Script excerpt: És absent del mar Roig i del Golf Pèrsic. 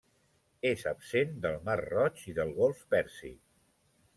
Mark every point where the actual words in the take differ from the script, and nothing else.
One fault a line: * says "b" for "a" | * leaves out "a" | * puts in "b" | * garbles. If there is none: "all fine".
all fine